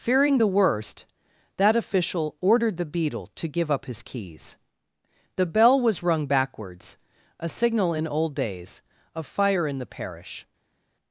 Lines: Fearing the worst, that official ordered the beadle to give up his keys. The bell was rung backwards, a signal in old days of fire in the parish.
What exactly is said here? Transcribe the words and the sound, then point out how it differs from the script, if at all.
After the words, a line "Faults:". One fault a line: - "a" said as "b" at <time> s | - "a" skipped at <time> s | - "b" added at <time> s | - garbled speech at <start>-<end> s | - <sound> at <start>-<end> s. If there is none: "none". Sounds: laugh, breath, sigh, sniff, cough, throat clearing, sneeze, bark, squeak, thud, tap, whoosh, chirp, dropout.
Fearing the worst, that official ordered the beadle to give up his keys. The bell was rung backwards, a signal in old days of fire in the parish.
Faults:
none